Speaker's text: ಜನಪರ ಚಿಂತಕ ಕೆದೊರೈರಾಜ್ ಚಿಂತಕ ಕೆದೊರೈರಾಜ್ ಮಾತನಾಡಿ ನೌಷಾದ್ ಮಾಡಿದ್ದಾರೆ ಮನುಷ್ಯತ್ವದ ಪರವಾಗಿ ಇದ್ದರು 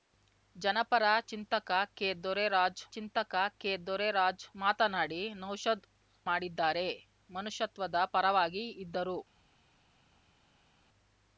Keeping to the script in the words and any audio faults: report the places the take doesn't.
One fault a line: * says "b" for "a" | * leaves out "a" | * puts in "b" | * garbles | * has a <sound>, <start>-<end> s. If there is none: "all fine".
all fine